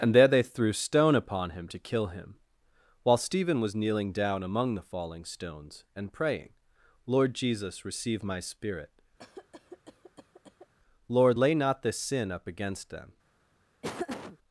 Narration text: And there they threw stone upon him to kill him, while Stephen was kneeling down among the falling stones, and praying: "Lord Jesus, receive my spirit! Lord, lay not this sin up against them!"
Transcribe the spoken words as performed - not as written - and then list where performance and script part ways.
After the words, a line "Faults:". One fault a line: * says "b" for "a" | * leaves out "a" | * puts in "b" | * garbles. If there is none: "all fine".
And there they threw stone upon him to kill him, while Stephen was kneeling down among the falling stones, and praying: "Lord Jesus, receive my spirit! Lord, lay not this sin up against them!"
Faults:
all fine